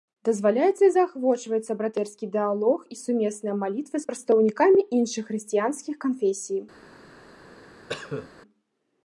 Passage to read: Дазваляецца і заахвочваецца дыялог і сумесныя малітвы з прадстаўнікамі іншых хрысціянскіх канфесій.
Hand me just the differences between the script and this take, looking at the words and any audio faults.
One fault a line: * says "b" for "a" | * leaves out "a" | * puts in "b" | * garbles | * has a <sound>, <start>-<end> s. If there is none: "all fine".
* puts in "братэрскі"
* has a cough, 7.9-8.3 s